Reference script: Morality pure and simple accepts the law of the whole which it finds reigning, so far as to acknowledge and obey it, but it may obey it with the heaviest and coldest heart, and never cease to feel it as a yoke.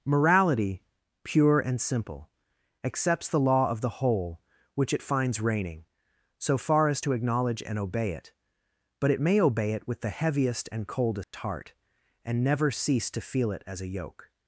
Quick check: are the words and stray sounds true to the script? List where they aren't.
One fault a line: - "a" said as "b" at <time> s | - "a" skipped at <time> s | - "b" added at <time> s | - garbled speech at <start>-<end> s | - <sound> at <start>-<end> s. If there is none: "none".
- dropout at 11.2-11.3 s